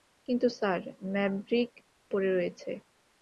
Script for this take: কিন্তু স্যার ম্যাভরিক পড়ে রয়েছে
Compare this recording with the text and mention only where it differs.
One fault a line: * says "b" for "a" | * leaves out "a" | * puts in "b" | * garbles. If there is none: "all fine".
all fine